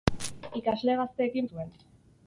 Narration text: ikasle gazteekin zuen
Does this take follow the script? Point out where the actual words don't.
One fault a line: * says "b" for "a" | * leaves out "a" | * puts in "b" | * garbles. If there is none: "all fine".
all fine